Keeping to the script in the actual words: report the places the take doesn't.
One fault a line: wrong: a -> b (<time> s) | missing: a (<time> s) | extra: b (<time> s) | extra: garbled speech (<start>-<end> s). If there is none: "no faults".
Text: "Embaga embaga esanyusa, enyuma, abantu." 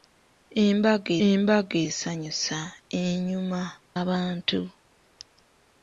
no faults